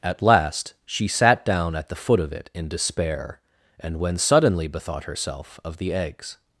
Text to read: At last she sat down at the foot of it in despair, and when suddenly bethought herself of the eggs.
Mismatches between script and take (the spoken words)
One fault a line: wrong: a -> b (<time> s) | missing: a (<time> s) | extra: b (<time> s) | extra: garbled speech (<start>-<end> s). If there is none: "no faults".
no faults